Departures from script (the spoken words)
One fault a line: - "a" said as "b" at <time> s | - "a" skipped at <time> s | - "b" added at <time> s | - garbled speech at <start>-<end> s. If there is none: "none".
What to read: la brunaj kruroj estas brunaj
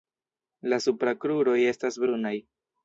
- "brunaj" said as "supra" at 0.8 s